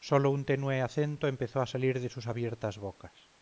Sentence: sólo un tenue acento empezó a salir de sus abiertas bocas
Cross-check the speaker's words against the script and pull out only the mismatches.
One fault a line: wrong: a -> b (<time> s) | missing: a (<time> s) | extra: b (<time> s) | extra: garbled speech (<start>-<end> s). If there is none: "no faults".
no faults